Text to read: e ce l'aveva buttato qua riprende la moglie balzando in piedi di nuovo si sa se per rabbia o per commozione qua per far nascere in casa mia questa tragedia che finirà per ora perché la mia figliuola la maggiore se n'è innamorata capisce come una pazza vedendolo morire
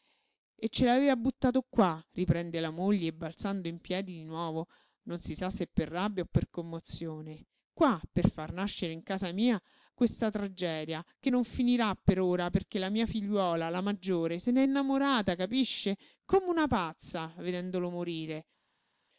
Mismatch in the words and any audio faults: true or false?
true